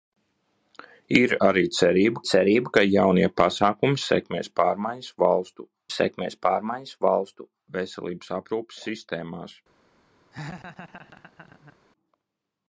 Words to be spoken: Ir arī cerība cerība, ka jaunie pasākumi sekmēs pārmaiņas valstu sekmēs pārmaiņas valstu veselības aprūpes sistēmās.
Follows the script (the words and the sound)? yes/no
no